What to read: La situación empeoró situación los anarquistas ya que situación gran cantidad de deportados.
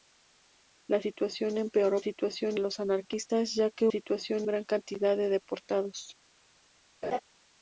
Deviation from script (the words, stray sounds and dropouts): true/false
true